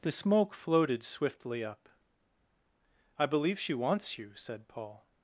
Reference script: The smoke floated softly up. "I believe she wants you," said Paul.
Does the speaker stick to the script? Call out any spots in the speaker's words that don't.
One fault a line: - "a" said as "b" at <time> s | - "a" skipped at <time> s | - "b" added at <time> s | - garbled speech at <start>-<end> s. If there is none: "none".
- "softly" said as "swiftly" at 1.0 s